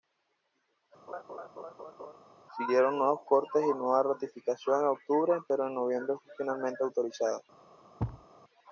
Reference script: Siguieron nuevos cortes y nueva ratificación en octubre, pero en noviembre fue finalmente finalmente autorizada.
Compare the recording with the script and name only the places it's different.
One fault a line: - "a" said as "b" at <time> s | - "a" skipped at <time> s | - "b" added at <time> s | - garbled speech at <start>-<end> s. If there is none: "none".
- "finalmente" skipped at 6.8 s